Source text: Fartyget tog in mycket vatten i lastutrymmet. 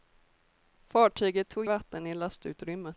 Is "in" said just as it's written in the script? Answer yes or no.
no